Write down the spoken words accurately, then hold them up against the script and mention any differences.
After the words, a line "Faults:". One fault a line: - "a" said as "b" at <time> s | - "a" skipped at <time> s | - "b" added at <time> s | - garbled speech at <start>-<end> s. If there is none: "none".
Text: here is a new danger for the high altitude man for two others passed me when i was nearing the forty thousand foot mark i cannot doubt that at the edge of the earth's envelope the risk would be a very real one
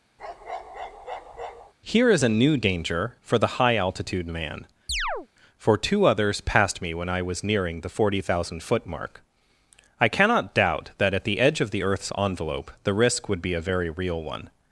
here is a new danger for the high altitude man for two others passed me when i was nearing the forty thousand foot mark i cannot doubt that at the edge of the earth's envelope the risk would be a very real one
Faults:
none